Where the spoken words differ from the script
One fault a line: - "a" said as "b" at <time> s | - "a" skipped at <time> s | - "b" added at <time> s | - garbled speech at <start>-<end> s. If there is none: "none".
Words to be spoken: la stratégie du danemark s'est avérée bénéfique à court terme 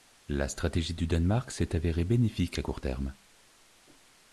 none